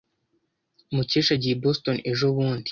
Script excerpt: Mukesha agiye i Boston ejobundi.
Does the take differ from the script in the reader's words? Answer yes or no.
no